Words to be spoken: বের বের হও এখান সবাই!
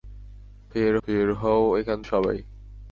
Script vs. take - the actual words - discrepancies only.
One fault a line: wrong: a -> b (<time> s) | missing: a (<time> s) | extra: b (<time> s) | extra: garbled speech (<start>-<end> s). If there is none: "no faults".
no faults